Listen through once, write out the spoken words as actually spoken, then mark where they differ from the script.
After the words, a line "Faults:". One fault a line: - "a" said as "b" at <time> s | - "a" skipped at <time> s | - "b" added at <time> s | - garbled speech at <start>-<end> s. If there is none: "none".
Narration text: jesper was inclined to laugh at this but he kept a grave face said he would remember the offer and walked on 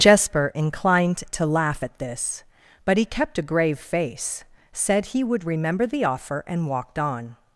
jesper inclined to laugh at this but he kept a grave face said he would remember the offer and walked on
Faults:
- "was" skipped at 0.5 s